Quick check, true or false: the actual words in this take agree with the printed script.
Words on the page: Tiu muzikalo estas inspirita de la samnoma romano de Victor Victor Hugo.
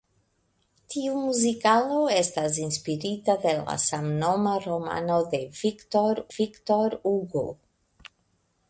true